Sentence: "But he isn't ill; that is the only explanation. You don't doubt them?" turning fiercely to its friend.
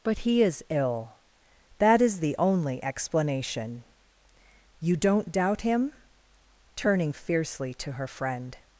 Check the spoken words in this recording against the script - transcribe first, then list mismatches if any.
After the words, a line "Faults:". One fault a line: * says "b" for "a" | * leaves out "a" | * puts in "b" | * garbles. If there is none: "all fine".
"But he is ill; that is the only explanation. You don't doubt him?" turning fiercely to her friend.
Faults:
* says "is" for "isn't"
* says "him" for "them"
* says "her" for "its"